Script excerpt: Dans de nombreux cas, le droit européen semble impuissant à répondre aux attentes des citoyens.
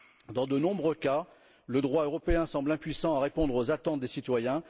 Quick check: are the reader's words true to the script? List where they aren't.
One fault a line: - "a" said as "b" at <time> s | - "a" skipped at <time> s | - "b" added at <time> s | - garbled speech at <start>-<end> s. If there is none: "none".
none